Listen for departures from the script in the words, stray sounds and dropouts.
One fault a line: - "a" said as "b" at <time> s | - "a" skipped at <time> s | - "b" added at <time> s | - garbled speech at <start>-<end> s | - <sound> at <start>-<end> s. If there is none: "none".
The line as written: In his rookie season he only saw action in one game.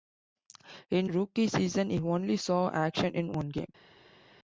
- "his" skipped at 1.1 s